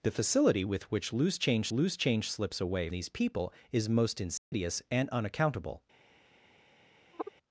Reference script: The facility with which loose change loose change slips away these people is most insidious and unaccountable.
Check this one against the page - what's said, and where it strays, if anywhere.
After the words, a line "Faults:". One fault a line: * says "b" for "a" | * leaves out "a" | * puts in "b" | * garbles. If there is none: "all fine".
The facility with which loose change loose change slips away these people is most insidious and unaccountable.
Faults:
all fine